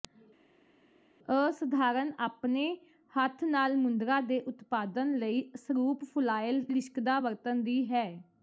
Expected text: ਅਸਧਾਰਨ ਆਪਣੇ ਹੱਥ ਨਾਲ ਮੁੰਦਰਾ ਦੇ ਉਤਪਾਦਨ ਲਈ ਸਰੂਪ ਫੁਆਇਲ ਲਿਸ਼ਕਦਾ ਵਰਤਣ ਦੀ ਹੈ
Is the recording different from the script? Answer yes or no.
no